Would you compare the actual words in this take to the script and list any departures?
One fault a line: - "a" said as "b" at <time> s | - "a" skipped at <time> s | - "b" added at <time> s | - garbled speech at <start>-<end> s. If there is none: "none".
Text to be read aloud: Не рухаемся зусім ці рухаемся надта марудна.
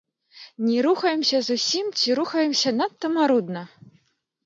none